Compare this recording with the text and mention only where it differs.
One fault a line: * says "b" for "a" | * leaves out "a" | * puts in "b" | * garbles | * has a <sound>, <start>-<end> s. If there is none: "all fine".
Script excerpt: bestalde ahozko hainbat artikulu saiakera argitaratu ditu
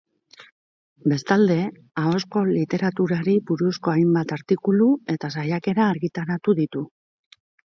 * puts in "literaturari buruzko"
* puts in "eta"